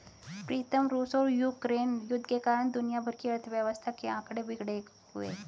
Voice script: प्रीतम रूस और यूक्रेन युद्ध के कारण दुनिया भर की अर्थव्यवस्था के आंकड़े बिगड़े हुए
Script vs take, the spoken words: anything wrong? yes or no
no